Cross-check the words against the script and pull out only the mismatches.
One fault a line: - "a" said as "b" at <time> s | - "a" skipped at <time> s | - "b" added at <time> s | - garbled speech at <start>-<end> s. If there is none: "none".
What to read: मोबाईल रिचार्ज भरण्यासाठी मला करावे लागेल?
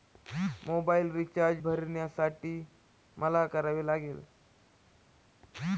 none